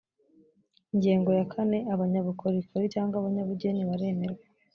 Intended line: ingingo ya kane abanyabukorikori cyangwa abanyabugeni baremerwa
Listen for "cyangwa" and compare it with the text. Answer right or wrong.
right